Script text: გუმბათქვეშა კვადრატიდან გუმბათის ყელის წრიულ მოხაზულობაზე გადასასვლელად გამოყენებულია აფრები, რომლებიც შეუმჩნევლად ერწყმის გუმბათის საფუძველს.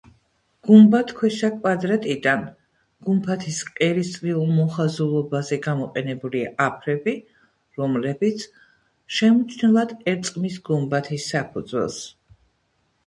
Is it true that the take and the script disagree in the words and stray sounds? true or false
true